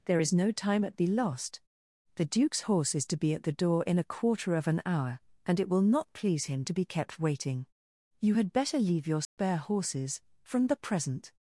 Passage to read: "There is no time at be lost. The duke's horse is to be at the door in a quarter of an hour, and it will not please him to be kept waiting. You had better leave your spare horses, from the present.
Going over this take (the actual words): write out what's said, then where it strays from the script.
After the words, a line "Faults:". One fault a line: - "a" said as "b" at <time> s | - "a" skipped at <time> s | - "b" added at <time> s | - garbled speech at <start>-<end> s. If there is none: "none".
"There is no time at be lost. The duke's horse is to be at the door in a quarter of an hour, and it will not please him to be kept waiting. You had better leave your spare horses, from the present.
Faults:
none